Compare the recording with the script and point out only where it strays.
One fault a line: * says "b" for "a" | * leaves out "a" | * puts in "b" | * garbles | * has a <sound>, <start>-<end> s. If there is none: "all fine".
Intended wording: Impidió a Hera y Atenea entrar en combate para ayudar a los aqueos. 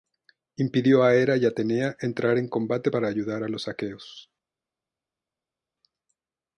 all fine